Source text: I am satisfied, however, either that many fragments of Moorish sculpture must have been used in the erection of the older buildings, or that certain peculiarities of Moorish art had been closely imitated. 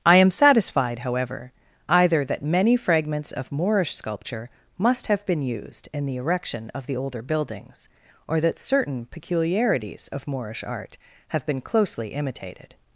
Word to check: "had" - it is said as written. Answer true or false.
false